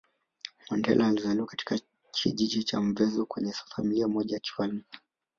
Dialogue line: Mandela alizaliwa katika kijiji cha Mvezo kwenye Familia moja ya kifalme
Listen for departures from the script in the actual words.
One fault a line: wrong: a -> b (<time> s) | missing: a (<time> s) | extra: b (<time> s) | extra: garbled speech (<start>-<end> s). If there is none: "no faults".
no faults